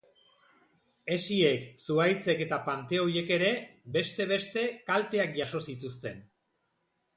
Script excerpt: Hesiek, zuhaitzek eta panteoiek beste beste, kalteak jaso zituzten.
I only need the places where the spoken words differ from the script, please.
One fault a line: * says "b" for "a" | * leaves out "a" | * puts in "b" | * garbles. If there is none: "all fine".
* puts in "ere"